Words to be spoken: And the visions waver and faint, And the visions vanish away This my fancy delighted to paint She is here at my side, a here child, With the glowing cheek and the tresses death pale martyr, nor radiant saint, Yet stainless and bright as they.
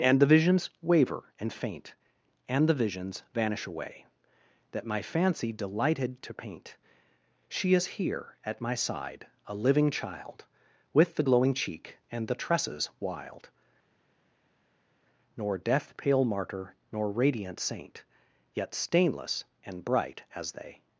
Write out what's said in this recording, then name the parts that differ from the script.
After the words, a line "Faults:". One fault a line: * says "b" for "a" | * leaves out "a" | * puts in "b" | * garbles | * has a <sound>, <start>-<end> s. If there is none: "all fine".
And the visions waver and faint, And the visions vanish away That my fancy delighted to paint She is here at my side, a living child, With the glowing cheek and the tresses wild, Nor death pale martyr, nor radiant saint, Yet stainless and bright as they.
Faults:
* says "That" for "This"
* says "living" for "here"
* puts in "wild Nor"